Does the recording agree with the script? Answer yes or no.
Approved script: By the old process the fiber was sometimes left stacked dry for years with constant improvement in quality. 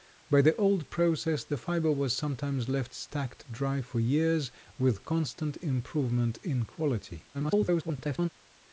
no